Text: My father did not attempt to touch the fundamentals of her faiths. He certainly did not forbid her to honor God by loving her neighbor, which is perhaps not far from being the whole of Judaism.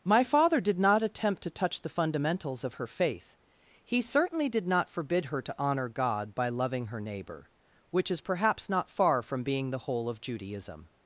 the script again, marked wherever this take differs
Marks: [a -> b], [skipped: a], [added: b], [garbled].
My father did not attempt to touch the fundamentals of her [faiths. -> faith] He certainly did not forbid her to honor God by loving her neighbor, which is perhaps not far from being the whole of Judaism.